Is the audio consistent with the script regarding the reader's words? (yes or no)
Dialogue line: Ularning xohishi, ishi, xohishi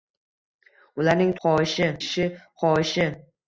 yes